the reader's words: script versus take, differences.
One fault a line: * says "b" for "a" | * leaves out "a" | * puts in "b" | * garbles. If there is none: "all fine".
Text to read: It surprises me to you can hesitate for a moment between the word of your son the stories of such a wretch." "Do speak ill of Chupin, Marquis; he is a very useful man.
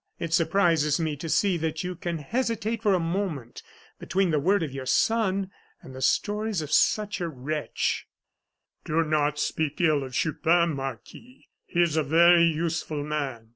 * puts in "see that"
* puts in "and"
* puts in "not"